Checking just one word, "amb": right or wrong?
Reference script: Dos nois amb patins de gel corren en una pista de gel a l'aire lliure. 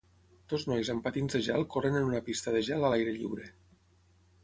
right